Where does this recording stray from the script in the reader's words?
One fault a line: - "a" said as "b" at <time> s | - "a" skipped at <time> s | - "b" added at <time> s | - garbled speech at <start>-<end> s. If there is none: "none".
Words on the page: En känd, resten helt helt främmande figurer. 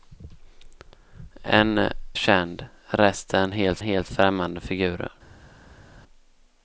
none